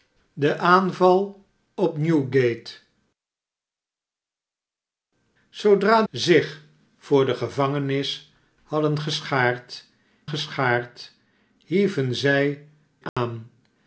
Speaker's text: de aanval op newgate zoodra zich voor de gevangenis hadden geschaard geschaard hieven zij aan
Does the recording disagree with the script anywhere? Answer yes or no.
no